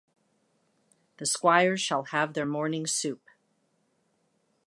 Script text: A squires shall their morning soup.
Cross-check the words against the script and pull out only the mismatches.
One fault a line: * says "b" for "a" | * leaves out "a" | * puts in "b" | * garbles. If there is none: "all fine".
* says "The" for "A"
* puts in "have"